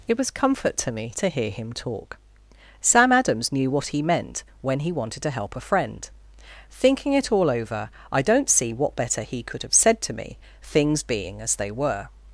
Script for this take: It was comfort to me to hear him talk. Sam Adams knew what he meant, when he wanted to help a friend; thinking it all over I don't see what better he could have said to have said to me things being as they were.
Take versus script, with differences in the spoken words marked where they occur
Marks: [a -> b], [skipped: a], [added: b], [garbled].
It was comfort to me to hear him talk. Sam Adams knew what he meant, when he wanted to help a friend; thinking it all over I don't see what better he could have said to [skipped: have said to] me things being as they were.